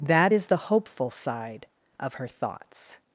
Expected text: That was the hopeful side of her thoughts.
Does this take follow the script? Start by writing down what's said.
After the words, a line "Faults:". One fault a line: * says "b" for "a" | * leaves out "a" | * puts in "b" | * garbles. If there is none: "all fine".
That is the hopeful side of her thoughts.
Faults:
* says "is" for "was"